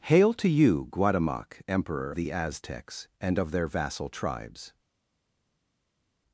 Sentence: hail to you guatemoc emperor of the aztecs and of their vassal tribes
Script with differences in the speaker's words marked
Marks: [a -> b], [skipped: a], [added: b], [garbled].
hail to you guatemoc emperor [skipped: of] the aztecs and of their vassal tribes